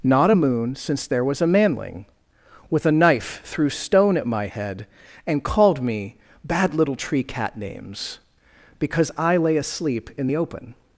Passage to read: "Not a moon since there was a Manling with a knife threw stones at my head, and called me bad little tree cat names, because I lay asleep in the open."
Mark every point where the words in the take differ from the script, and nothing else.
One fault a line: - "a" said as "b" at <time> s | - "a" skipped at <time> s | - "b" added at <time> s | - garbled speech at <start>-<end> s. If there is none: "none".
- "stones" said as "stone" at 3.7 s